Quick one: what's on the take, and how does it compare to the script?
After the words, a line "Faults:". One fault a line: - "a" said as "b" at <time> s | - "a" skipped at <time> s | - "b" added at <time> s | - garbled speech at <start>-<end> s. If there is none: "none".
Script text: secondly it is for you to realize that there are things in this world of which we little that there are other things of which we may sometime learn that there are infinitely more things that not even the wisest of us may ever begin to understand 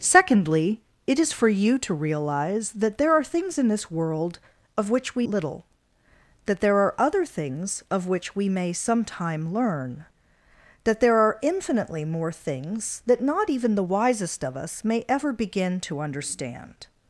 secondly it is for you to realize that there are things in this world of which we little that there are other things of which we may sometime learn that there are infinitely more things that not even the wisest of us may ever begin to understand
Faults:
none